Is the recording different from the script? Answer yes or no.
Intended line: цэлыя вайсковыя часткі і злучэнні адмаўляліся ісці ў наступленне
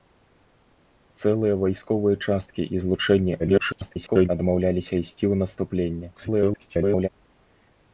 yes